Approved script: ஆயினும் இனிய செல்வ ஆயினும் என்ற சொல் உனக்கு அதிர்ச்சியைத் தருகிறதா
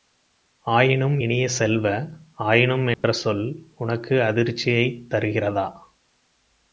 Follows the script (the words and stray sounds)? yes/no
no